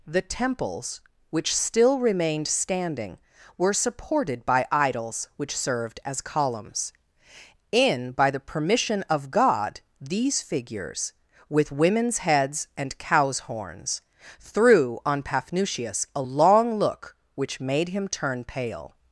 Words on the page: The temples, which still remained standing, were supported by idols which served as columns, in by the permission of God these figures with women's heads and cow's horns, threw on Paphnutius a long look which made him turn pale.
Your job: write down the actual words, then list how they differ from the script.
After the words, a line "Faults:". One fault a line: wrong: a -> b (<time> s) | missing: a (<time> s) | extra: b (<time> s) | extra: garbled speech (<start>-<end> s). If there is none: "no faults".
The temples, which still remained standing, were supported by idols which served as columns, in by the permission of God these figures with women's heads and cow's horns, threw on Paphnutius a long look which made him turn pale.
Faults:
no faults